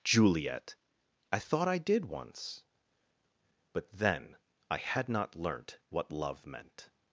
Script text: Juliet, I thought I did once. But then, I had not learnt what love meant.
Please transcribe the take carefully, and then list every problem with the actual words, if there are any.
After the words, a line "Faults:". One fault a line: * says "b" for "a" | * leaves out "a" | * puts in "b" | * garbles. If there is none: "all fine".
Juliet, I thought I did once. But then, I had not learnt what love meant.
Faults:
all fine